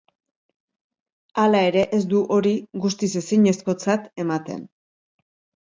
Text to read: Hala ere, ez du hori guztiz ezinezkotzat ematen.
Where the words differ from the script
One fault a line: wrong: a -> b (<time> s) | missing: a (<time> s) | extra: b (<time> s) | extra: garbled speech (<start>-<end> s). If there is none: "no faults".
no faults